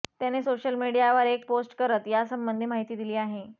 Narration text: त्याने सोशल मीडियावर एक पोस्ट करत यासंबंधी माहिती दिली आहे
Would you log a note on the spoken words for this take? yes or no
no